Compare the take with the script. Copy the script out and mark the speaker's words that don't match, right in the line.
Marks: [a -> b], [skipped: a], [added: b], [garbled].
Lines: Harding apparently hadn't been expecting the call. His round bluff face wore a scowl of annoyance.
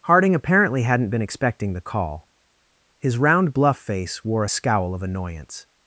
Harding apparently hadn't been expecting the call. His round bluff face wore a scowl of annoyance.